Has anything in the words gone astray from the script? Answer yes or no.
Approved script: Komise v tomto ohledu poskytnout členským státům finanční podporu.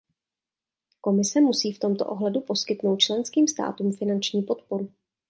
yes